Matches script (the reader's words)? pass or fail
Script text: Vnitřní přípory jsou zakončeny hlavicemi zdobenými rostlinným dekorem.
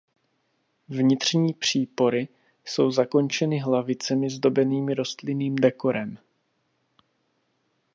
pass